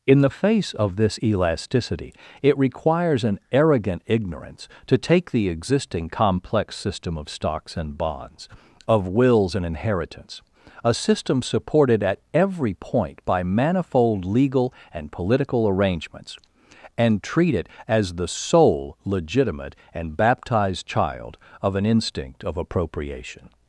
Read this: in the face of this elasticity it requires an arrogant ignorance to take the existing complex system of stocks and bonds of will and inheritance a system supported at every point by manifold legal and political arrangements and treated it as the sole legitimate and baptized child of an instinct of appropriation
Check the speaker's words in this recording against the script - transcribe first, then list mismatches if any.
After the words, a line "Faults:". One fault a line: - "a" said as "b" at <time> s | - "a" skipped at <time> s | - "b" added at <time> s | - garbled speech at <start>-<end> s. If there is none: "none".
in the face of this elasticity it requires an arrogant ignorance to take the existing complex system of stocks and bonds of wills and inheritance a system supported at every point by manifold legal and political arrangements and treat it as the sole legitimate and baptized child of an instinct of appropriation
Faults:
- "will" said as "wills" at 9.1 s
- "treated" said as "treat" at 17.2 s